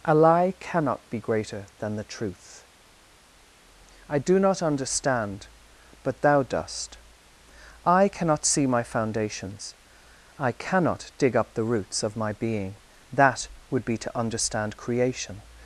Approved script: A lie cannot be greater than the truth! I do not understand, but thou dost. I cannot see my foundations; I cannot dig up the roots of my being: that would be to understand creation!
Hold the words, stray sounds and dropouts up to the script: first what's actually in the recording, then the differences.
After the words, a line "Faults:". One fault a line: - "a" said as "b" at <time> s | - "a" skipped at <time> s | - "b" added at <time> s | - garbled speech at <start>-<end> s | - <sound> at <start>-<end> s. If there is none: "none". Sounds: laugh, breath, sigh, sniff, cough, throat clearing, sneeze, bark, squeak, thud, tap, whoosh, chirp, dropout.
A lie cannot be greater than the truth! I do not understand, but thou dost. I cannot see my foundations; I cannot dig up the roots of my being: that would be to understand creation!
Faults:
none